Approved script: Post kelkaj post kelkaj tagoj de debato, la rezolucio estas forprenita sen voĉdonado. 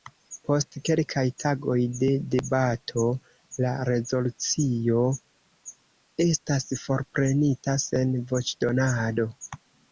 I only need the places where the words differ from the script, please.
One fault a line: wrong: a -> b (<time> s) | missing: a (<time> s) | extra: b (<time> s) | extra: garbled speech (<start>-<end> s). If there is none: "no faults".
missing: post kelkaj (1.2 s)